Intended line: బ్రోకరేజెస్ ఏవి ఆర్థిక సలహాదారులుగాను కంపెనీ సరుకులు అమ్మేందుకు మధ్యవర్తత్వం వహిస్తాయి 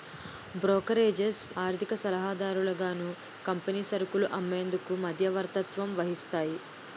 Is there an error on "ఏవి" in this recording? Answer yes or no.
yes